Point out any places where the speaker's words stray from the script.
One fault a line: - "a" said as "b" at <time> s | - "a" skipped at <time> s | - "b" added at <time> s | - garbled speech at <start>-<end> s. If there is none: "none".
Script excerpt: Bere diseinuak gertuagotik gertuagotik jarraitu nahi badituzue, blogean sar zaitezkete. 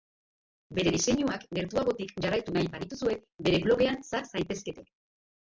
- "gertuagotik" skipped at 2.1 s
- "bere" added at 3.5 s